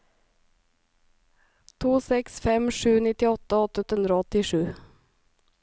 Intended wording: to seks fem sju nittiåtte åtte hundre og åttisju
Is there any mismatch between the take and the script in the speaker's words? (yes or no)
yes